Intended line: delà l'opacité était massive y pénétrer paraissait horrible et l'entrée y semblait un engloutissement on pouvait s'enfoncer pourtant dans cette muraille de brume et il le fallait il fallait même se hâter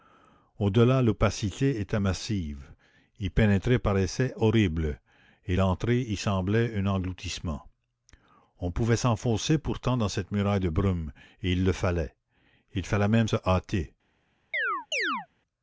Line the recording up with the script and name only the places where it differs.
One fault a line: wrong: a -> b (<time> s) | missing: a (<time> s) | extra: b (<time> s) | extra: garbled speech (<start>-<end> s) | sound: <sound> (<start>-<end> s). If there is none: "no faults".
sound: chirp (14.5-15.3 s)